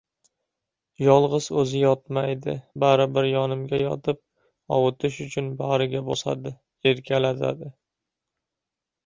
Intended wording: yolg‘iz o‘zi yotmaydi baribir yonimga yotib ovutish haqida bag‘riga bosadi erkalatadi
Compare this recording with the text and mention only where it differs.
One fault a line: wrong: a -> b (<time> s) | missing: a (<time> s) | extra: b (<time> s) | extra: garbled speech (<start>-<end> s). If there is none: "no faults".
wrong: haqida -> uchun (5.3 s)